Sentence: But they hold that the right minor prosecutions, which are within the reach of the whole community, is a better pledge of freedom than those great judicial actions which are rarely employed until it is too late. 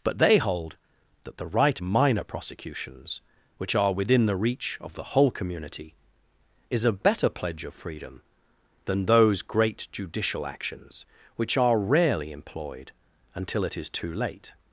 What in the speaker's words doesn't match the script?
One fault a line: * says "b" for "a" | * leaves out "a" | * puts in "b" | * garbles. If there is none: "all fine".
all fine